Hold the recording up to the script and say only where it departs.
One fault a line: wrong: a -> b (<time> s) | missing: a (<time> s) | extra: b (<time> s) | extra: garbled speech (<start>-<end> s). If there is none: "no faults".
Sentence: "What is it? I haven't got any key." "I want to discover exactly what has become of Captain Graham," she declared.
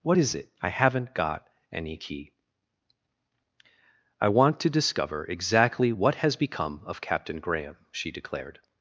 no faults